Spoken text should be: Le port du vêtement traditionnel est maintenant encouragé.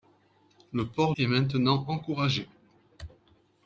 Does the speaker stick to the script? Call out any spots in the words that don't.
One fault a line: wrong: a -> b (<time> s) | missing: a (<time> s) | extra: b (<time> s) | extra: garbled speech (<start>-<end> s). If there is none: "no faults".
missing: du vêtement traditionnel (1.1 s)